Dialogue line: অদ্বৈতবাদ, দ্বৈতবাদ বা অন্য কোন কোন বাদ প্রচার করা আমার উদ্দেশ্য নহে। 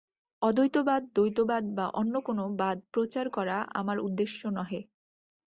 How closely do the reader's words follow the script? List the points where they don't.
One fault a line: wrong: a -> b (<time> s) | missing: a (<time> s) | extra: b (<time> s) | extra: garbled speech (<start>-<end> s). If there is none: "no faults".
missing: কোন (2.4 s)